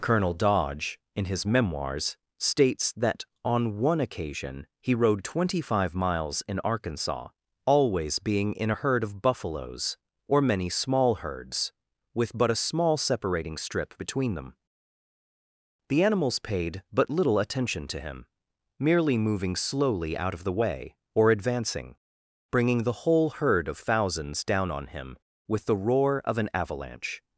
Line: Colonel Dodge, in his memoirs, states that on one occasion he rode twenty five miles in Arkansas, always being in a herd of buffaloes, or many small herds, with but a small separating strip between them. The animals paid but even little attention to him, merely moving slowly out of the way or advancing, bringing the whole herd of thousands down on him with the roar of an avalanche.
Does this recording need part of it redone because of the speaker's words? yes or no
yes